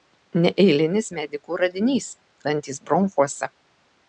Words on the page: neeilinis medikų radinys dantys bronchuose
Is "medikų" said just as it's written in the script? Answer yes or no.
yes